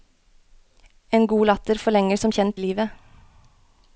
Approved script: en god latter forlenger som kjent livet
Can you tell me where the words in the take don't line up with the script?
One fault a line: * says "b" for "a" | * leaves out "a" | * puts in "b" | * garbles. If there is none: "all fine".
all fine